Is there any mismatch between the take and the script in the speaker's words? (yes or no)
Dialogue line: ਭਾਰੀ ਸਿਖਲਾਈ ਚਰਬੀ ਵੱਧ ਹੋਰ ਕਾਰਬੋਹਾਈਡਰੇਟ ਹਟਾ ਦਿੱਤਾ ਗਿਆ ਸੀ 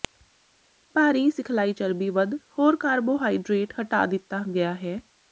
yes